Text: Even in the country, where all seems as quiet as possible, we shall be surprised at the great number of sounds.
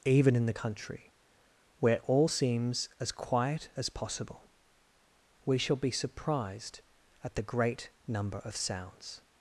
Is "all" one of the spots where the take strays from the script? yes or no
no